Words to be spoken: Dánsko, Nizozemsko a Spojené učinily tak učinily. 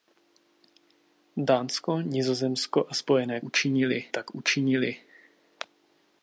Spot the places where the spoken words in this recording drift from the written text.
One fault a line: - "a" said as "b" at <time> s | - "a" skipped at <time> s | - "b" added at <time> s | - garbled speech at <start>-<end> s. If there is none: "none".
none